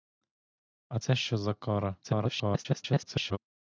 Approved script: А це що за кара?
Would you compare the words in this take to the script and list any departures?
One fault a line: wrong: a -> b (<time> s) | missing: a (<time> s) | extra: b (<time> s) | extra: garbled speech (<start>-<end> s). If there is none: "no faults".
extra: garbled speech (2.0-3.4 s)